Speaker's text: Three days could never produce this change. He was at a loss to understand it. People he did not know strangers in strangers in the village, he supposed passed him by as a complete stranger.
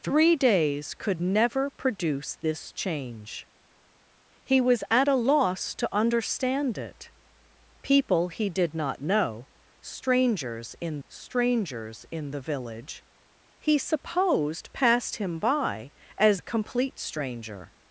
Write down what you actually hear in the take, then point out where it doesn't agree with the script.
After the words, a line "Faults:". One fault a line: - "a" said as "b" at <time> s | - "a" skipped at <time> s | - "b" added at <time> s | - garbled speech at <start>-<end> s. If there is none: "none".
Three days could never produce this change. He was at a loss to understand it. People he did not know strangers in strangers in the village, he supposed passed him by as a complete stranger.
Faults:
none